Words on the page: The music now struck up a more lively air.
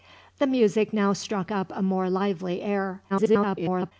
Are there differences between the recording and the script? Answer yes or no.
yes